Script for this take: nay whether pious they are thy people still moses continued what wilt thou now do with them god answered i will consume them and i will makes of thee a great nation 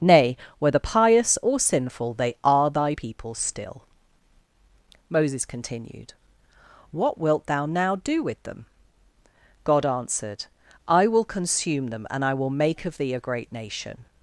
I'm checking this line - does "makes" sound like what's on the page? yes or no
no